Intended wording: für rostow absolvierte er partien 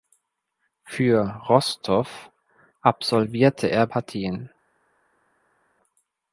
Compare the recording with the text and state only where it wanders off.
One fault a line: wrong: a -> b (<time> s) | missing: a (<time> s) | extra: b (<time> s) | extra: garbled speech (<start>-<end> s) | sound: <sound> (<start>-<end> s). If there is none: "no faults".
no faults